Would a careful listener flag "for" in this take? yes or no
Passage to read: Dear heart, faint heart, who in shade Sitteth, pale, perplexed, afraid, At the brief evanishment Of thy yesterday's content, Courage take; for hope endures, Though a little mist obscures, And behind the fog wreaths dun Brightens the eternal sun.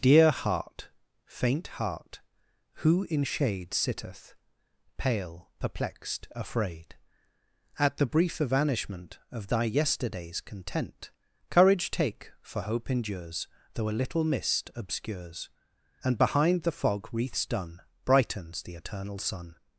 no